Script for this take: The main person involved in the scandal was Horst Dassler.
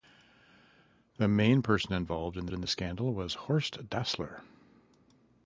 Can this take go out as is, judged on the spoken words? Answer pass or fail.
fail